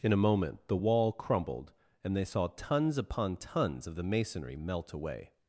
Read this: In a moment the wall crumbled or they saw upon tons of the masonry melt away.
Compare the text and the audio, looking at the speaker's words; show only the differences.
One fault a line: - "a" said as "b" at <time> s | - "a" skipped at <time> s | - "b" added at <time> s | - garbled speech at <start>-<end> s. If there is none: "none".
- "or" said as "and" at 2.0 s
- "tons" added at 2.5 s